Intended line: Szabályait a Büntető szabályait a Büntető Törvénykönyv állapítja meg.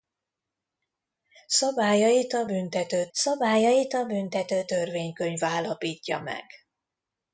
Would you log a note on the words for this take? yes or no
no